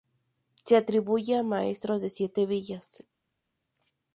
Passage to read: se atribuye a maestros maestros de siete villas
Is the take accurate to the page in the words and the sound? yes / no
no